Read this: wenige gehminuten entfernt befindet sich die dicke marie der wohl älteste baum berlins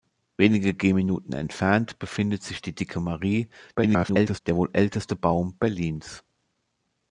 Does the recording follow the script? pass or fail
fail